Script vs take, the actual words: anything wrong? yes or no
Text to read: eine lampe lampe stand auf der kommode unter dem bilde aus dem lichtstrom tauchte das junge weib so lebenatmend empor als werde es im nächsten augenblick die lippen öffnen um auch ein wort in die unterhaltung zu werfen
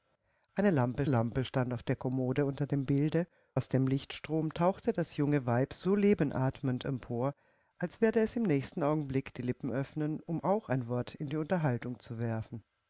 no